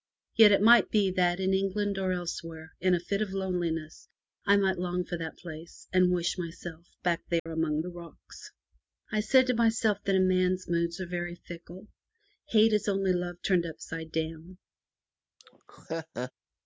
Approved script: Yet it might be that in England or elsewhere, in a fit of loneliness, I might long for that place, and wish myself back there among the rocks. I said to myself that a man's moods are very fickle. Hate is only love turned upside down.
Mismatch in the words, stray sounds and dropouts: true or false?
true